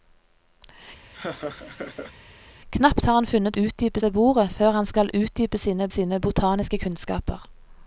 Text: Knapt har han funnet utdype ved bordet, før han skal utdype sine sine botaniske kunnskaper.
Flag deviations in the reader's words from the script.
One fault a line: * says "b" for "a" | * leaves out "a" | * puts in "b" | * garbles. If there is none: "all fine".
all fine